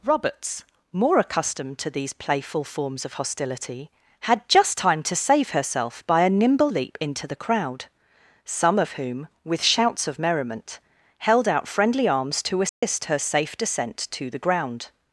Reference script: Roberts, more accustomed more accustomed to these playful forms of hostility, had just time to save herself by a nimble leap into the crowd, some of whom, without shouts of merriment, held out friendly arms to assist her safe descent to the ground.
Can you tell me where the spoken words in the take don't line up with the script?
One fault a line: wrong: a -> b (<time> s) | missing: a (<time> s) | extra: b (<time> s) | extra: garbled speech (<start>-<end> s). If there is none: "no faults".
missing: more accustomed (1.8 s)
wrong: without -> with (9.4 s)